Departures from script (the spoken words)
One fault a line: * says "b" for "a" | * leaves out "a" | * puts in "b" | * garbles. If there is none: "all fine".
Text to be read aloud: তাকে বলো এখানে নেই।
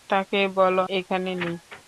all fine